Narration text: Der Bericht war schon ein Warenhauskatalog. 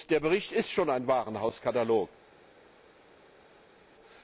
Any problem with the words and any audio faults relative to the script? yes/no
yes